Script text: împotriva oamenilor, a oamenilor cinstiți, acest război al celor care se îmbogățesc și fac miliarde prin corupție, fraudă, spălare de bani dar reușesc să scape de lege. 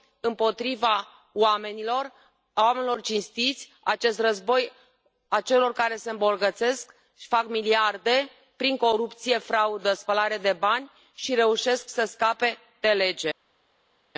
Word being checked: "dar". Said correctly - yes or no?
no